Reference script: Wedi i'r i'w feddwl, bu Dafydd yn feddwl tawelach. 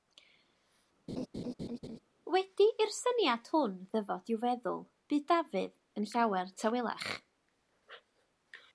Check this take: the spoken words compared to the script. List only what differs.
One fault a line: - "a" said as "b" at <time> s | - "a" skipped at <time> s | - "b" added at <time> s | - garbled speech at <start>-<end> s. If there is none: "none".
- "syniad hwn ddyfod" added at 3.0 s
- "feddwl" said as "llawer" at 6.1 s